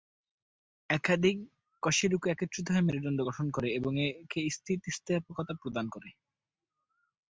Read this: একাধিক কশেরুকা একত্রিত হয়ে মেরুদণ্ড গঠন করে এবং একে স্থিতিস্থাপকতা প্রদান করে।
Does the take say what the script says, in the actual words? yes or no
yes